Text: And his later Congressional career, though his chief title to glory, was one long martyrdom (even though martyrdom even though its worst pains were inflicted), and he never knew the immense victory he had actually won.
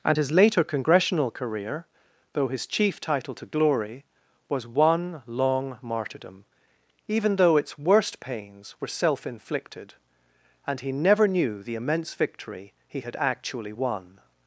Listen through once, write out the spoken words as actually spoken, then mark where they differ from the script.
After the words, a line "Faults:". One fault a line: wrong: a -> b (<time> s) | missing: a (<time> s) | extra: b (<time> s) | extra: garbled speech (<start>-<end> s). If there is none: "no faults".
And his later Congressional career, though his chief title to glory, was one long martyrdom (even though its worst pains were self inflicted), and he never knew the immense victory he had actually won.
Faults:
missing: martyrdom even though (7.6 s)
extra: self (8.9 s)